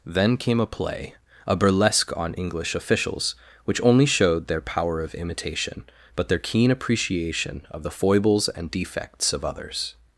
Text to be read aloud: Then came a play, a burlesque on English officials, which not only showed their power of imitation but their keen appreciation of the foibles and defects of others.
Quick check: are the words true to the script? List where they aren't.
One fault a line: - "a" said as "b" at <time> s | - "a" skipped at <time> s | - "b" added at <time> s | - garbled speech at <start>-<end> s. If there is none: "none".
- "not" skipped at 3.8 s